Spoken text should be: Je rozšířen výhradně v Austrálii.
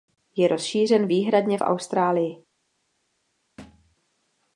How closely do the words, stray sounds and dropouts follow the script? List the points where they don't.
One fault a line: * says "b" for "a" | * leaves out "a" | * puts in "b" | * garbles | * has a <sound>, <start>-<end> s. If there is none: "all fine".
* has a thud, 3.6-4.0 s